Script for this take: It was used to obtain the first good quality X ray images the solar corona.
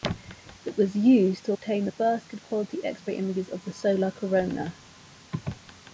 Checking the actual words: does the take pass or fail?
fail